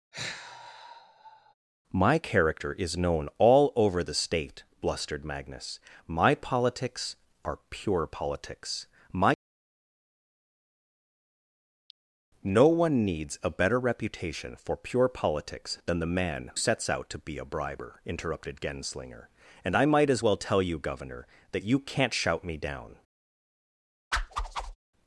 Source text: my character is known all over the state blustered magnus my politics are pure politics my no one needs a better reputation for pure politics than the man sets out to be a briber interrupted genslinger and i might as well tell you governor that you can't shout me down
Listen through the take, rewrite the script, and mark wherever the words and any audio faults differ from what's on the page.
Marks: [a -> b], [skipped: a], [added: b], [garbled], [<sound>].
[sigh] my character is known all over the state blustered magnus my politics are pure politics my no one needs a better reputation for pure politics than the man sets out to be a briber interrupted genslinger and i might as well tell you governor that you can't shout me down [whoosh]